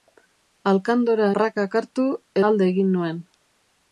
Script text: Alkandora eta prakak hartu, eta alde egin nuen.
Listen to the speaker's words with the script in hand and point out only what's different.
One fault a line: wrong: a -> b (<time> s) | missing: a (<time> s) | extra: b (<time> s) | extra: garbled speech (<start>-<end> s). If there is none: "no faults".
missing: eta (1.3 s)
missing: eta (2.1 s)